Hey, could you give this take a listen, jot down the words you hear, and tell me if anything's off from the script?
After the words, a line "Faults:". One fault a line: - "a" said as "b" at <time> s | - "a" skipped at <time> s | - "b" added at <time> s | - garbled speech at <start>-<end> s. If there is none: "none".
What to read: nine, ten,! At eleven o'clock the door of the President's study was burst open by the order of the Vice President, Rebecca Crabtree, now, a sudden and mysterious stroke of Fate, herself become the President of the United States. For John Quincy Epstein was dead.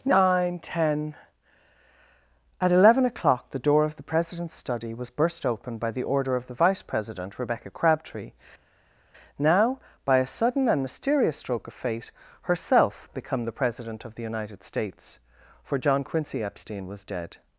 nine, ten,! At eleven o'clock the door of the President's study was burst open by the order of the Vice President, Rebecca Crabtree, now, by a sudden and mysterious stroke of Fate, herself become the President of the United States. For John Quincy Epstein was dead.
Faults:
- "by" added at 10.1 s